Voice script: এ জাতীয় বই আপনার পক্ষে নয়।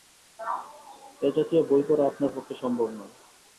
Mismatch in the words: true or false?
true